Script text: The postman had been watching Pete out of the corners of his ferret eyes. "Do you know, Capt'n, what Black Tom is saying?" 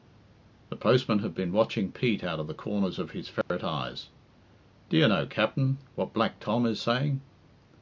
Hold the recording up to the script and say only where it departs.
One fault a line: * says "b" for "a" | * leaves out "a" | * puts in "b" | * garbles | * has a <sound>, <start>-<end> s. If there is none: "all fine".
* has a dropout, 3.4-3.5 s